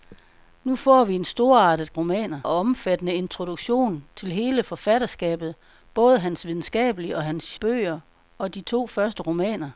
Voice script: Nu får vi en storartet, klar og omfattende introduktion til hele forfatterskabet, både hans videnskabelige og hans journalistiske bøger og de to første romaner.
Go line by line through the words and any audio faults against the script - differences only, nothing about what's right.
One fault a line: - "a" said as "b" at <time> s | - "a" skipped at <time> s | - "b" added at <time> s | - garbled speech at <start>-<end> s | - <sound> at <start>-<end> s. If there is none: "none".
- "klar" said as "romaner" at 1.9 s
- "journalistiske" skipped at 7.6 s